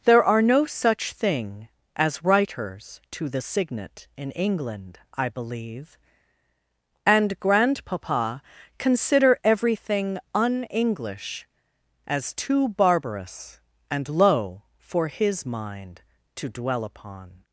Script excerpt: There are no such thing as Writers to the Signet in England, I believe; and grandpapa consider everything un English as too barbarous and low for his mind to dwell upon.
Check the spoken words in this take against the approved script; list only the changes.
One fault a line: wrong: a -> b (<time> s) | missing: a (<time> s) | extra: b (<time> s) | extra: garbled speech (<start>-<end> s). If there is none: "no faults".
no faults